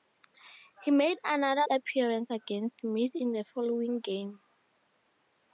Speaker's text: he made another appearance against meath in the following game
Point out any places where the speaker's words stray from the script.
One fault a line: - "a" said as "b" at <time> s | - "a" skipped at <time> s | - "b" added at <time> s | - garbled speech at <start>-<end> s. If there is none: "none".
none